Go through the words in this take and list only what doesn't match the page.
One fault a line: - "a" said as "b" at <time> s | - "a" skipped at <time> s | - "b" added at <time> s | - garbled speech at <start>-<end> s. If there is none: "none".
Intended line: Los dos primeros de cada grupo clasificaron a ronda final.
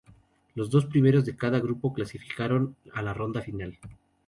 - "la" added at 3.0 s